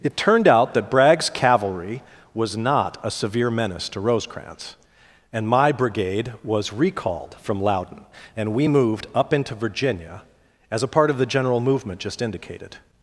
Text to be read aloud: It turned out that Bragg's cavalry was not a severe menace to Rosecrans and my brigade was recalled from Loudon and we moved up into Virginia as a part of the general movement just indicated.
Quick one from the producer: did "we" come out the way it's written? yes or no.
yes